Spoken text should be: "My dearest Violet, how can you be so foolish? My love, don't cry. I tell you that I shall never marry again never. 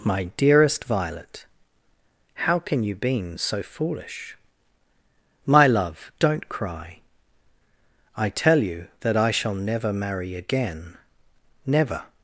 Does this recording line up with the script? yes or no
no